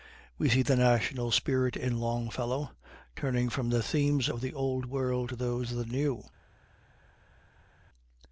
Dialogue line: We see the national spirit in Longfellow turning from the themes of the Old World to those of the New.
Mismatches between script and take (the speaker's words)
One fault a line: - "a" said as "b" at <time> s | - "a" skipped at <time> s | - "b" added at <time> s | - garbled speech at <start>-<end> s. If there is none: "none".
none